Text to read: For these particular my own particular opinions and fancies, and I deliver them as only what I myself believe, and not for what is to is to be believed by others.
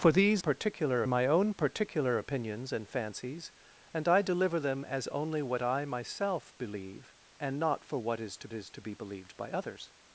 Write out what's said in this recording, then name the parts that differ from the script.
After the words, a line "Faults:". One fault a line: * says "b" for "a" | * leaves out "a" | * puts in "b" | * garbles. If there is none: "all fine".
For these particular my own particular opinions and fancies, and I deliver them as only what I myself believe, and not for what is to is to be believed by others.
Faults:
all fine